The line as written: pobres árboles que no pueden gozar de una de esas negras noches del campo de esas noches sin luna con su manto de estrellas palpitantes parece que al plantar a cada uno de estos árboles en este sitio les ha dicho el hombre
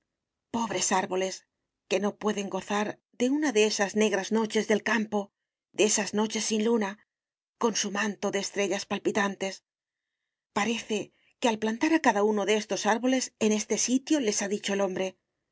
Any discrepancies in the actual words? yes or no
no